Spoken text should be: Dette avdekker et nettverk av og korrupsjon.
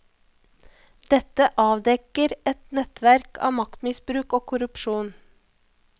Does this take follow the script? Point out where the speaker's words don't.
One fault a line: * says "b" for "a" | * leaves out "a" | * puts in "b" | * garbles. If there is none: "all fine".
* puts in "maktmisbruk"